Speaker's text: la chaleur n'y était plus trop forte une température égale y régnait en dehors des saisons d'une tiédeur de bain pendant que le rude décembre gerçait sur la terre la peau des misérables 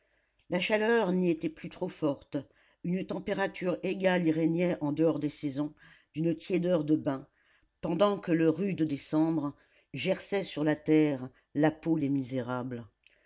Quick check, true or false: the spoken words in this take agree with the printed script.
true